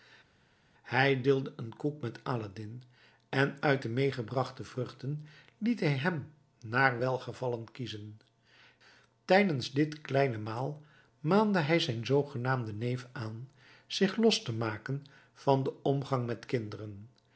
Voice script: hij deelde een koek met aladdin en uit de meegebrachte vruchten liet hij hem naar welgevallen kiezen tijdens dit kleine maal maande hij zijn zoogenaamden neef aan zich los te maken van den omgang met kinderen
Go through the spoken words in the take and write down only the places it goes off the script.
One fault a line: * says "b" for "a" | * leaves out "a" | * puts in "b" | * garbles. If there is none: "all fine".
all fine